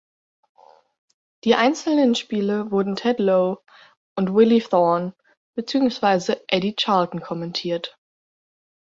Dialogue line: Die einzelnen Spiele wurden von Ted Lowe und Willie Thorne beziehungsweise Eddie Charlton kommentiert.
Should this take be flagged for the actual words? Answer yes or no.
yes